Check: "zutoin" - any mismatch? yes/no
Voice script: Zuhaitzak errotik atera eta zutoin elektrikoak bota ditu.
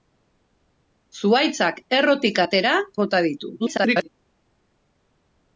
yes